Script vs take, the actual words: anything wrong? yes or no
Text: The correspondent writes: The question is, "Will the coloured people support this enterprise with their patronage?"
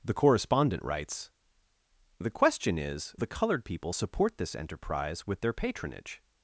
yes